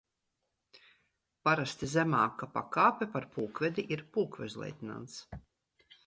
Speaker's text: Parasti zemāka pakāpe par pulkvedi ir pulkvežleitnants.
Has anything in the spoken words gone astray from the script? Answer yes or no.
no